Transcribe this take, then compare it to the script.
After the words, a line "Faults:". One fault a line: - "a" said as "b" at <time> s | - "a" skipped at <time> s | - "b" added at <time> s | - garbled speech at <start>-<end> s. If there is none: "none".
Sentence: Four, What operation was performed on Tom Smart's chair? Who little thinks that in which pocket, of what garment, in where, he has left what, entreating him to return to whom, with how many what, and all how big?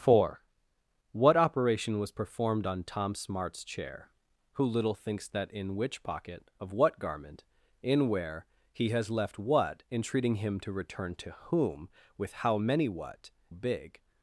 Four, What operation was performed on Tom Smart's chair? Who little thinks that in which pocket, of what garment, in where, he has left what, entreating him to return to whom, with how many what, big?
Faults:
- "and all how" skipped at 13.3 s